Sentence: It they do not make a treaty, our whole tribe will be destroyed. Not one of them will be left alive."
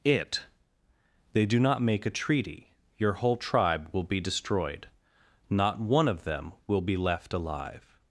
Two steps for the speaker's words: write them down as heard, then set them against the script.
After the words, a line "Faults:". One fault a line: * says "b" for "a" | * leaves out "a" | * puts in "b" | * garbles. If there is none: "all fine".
It they do not make a treaty, your whole tribe will be destroyed. Not one of them will be left alive."
Faults:
* says "your" for "our"